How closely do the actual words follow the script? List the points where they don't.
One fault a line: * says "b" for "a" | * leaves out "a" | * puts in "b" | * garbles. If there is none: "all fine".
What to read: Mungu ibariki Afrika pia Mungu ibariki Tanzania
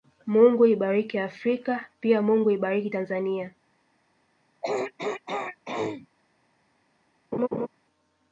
all fine